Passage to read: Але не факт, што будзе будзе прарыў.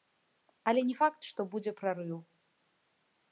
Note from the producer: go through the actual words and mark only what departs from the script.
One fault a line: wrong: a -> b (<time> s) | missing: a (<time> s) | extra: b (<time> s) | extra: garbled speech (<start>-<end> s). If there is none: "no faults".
missing: будзе (1.7 s)